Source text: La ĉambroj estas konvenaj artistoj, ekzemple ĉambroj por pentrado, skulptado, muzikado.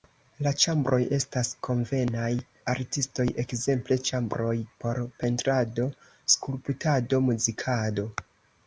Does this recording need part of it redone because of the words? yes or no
no